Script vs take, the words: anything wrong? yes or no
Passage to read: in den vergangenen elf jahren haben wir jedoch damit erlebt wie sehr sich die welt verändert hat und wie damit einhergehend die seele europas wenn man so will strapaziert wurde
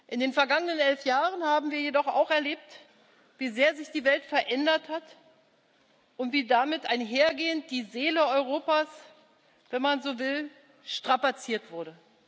yes